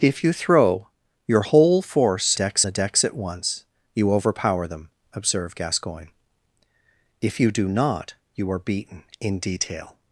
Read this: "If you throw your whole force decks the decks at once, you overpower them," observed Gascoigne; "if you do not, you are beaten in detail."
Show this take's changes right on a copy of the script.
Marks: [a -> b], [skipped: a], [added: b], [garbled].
"If you throw your whole force decks the decks at once, you overpower them," observed Gascoigne; "if you do not, you are beaten in detail."